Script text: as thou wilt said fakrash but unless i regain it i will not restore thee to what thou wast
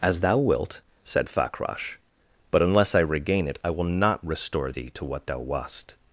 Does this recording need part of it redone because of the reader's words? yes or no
no